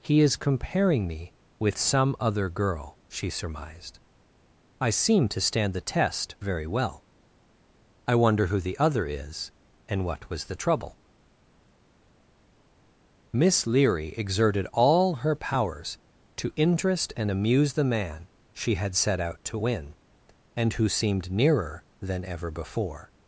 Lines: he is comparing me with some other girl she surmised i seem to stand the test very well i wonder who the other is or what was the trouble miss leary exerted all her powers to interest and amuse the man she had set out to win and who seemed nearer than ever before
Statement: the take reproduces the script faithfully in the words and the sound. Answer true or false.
false